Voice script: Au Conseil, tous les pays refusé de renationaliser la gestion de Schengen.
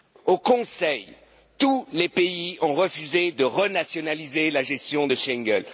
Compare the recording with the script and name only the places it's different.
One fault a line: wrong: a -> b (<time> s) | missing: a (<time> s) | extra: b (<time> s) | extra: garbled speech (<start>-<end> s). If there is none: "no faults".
extra: ont (2.6 s)